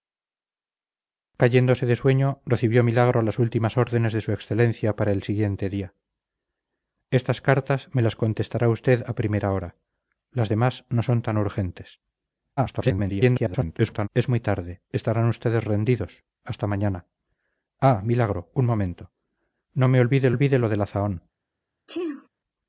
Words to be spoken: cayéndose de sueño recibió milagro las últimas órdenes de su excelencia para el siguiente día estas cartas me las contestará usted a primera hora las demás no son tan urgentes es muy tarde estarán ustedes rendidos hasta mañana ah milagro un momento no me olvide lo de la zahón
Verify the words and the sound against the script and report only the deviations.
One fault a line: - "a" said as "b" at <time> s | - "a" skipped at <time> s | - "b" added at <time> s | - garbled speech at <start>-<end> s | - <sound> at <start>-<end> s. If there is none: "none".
- garbled speech at 12.6-14.1 s
- "olvide" added at 20.3 s
- sneeze at 21.9-22.3 s